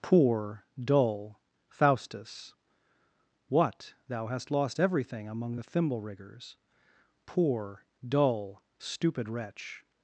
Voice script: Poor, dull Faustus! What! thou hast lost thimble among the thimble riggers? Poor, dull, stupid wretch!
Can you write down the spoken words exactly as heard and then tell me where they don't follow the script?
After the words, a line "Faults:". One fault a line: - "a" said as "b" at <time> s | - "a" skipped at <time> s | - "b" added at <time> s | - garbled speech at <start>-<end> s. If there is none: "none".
Poor, dull Faustus! What! thou hast lost everything among the thimble riggers? Poor, dull, stupid wretch!
Faults:
- "thimble" said as "everything" at 4.8 s